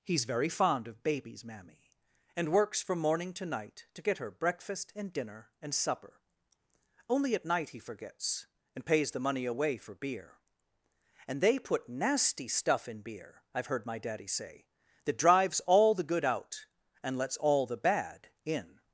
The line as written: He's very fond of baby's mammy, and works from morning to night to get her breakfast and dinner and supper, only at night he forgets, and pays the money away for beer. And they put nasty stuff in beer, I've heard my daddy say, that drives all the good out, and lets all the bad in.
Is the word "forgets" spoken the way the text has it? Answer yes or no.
yes